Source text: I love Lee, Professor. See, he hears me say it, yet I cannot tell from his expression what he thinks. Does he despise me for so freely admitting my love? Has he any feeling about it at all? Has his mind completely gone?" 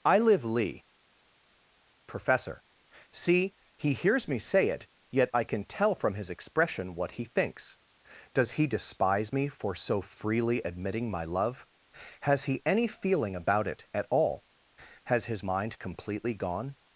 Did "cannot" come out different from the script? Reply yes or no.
yes